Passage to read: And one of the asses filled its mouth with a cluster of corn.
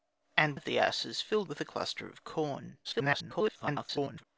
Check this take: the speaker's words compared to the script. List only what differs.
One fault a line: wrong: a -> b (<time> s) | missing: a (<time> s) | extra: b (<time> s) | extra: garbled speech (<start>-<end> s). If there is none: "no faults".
missing: one (0.6 s)
missing: its mouth (1.5 s)
extra: garbled speech (2.8-4.3 s)